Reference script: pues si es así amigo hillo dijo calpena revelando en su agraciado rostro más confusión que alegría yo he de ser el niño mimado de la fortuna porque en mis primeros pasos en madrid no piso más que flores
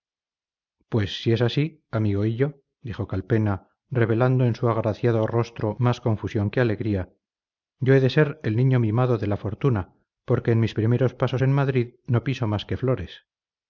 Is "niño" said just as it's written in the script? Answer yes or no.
yes